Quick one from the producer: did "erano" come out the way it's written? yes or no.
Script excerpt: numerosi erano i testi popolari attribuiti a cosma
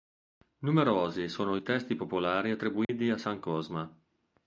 no